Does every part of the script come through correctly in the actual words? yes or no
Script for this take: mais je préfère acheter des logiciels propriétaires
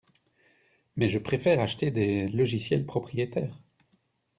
yes